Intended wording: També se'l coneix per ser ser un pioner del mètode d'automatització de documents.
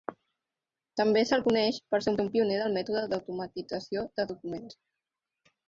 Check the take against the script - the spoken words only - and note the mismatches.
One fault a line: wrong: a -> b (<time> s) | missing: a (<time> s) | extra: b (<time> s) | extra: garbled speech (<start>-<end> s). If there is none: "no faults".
no faults